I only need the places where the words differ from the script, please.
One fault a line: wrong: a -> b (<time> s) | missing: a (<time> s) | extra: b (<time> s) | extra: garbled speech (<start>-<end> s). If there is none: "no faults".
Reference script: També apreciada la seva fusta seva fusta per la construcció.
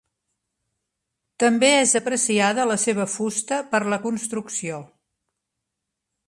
extra: és (1.8 s)
missing: seva fusta (3.6 s)